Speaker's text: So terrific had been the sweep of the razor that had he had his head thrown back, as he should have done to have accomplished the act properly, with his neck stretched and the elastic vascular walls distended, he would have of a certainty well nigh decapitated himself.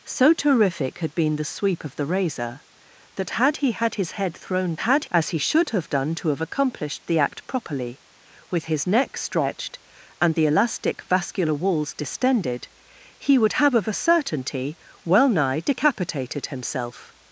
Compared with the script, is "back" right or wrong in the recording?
wrong